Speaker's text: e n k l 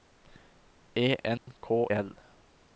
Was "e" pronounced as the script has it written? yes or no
yes